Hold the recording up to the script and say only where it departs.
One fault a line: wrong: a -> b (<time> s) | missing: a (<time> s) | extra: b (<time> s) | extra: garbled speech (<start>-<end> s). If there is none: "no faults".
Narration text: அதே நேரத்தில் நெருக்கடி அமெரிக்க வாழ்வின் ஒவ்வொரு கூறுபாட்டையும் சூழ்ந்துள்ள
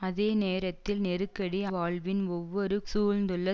missing: அமெரிக்க (1.6 s)
missing: கூறுபாட்டையும் (2.8 s)